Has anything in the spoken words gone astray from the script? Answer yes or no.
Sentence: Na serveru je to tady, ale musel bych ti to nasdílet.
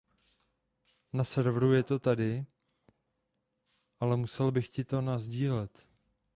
no